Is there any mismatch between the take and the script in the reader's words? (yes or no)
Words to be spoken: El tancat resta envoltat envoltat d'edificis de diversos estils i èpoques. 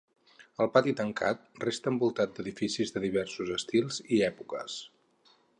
yes